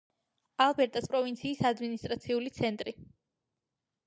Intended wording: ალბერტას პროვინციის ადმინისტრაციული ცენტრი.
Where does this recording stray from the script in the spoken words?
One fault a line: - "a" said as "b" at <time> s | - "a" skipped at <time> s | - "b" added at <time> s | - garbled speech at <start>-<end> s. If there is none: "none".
none